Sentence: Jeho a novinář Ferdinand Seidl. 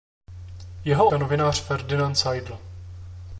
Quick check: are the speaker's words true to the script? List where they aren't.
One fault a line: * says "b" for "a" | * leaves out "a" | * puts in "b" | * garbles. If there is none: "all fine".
all fine